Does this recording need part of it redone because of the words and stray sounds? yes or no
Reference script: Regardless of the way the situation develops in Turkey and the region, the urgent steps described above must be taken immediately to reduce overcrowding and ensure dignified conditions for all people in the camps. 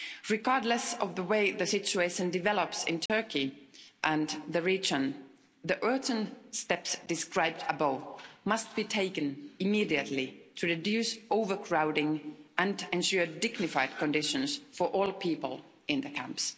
yes